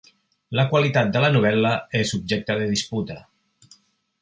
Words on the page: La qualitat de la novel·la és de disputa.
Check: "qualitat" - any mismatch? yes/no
no